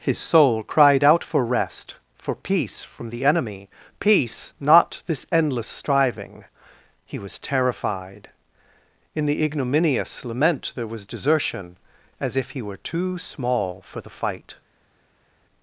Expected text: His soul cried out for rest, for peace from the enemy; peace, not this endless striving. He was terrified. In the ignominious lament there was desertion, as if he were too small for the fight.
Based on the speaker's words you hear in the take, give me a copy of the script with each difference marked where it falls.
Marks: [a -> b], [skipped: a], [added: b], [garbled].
His soul cried out for rest, for peace from the enemy; peace, not this endless striving. He was terrified. In the ignominious lament there was desertion, as if he were too small for the fight.